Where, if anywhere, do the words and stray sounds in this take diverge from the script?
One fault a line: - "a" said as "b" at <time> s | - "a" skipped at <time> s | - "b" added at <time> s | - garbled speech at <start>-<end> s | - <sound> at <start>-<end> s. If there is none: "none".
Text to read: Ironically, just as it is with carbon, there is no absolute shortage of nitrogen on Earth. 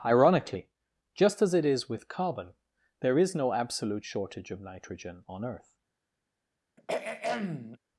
- throat clearing at 6.8-7.8 s